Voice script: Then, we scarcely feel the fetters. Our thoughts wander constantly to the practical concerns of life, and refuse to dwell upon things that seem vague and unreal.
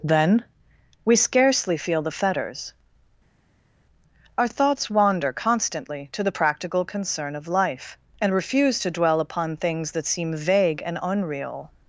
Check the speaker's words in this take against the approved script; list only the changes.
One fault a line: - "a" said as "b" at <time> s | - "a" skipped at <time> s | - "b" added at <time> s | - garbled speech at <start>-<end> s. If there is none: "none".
- "concerns" said as "concern" at 6.8 s